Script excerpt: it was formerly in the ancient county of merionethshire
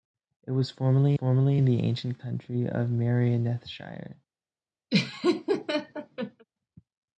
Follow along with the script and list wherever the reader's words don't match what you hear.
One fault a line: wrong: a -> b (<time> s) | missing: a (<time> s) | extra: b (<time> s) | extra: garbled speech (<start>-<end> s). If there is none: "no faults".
extra: formerly (1.1 s)